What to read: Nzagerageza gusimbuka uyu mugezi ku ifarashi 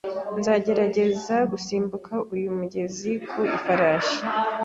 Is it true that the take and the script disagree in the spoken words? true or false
false